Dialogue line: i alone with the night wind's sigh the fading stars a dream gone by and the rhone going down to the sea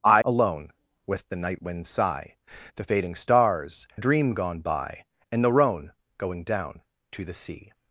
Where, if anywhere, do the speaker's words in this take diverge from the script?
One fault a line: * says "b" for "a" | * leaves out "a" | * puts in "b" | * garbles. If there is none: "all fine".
all fine